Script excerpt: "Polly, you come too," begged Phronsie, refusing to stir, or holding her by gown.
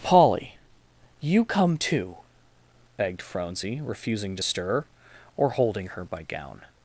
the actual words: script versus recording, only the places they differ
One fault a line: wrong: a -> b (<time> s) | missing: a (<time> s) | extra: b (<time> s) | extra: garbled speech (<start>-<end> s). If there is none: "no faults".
no faults